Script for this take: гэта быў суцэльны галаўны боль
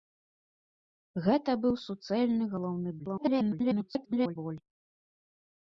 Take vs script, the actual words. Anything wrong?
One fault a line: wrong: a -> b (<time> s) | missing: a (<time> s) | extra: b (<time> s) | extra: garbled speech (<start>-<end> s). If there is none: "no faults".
extra: garbled speech (3.0-4.4 s)